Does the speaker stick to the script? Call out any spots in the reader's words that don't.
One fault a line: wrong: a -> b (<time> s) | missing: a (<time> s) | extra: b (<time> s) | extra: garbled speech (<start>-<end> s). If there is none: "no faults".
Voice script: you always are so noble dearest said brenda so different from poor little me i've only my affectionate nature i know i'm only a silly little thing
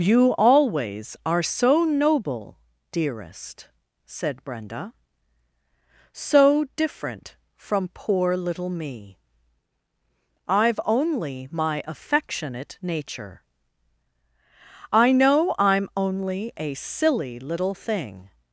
no faults